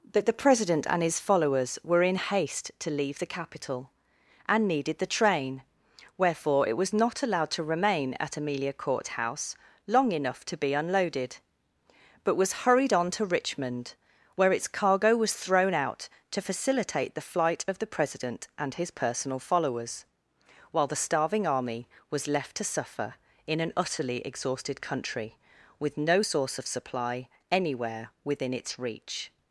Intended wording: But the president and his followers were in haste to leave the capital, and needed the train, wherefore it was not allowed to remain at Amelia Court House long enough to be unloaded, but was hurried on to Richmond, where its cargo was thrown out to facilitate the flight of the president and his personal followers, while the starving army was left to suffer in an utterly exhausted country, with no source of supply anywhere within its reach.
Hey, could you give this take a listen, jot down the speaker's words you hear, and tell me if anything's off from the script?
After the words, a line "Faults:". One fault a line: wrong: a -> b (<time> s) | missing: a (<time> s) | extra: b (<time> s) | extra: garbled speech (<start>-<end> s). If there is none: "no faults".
That the president and his followers were in haste to leave the capital, and needed the train, wherefore it was not allowed to remain at Amelia Court House long enough to be unloaded, but was hurried on to Richmond, where its cargo was thrown out to facilitate the flight of the president and his personal followers, while the starving army was left to suffer in an utterly exhausted country, with no source of supply anywhere within its reach.
Faults:
wrong: But -> That (0.1 s)